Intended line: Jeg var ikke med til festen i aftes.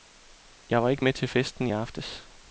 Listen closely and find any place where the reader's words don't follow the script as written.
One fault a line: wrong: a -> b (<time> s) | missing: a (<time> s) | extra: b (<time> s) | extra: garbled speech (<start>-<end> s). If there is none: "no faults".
no faults